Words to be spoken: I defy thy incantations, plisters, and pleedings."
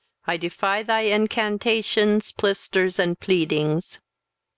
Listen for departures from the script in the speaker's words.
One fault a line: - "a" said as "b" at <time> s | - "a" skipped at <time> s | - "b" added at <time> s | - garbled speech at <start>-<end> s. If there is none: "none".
none